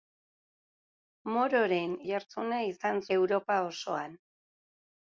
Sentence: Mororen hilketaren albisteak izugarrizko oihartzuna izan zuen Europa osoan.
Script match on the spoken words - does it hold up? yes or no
no